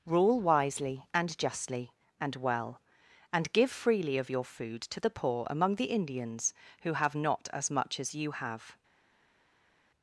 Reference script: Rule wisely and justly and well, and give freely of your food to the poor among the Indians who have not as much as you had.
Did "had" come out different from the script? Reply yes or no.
yes